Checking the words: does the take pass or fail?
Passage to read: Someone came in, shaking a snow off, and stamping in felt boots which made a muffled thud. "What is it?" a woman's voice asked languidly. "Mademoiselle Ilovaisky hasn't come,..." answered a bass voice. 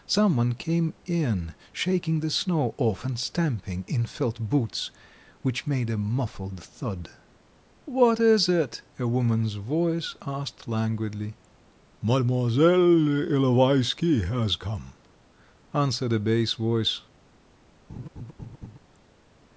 fail